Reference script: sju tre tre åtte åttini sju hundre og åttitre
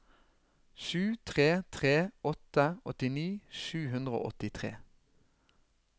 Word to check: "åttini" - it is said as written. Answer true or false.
true